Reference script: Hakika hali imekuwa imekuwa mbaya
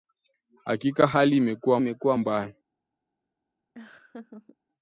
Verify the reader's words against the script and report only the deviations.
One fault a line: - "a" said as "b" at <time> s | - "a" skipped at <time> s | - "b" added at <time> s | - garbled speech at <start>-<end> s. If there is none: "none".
none